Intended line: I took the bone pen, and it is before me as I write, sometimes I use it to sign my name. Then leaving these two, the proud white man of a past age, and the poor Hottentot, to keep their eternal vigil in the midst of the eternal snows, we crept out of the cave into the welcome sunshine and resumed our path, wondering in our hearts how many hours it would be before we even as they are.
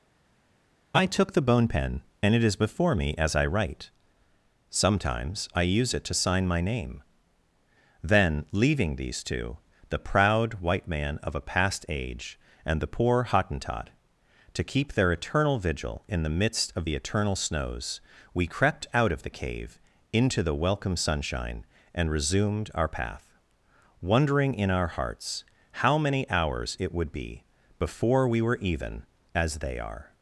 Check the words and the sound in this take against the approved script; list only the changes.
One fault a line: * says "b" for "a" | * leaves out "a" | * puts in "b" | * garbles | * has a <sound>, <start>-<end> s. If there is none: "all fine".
* puts in "were"